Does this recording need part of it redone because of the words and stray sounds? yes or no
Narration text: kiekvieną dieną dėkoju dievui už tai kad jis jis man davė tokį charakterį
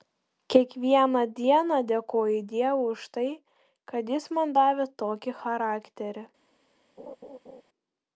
yes